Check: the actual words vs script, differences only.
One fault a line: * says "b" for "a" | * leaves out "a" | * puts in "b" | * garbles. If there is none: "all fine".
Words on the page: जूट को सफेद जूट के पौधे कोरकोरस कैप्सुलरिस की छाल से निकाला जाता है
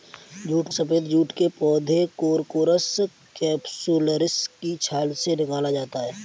* leaves out "को"